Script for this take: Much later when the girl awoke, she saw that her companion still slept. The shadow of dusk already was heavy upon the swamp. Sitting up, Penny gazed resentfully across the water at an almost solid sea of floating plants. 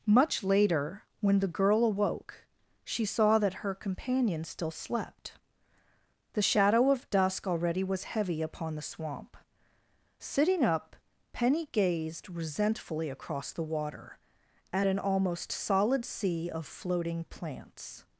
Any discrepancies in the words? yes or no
no